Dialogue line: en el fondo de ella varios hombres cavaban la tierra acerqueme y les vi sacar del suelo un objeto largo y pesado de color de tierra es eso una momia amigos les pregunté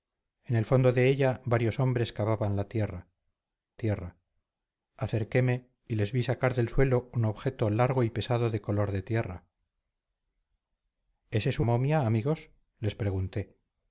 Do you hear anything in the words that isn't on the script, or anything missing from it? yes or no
yes